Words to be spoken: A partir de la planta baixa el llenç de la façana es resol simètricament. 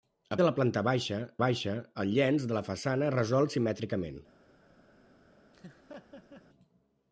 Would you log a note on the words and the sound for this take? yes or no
yes